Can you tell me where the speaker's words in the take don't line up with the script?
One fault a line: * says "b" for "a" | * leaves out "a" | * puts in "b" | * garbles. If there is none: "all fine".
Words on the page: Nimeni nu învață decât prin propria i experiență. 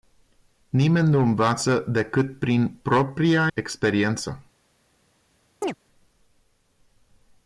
* leaves out "i"